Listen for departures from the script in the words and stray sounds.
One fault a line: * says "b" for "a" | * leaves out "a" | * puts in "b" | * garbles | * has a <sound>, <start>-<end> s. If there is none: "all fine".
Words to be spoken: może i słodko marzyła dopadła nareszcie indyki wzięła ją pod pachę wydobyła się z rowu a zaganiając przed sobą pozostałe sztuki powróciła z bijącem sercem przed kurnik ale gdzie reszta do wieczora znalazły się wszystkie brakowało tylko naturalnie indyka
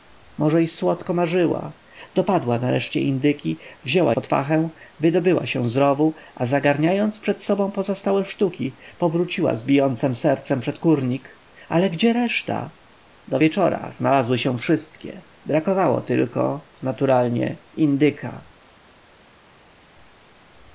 * leaves out "ją"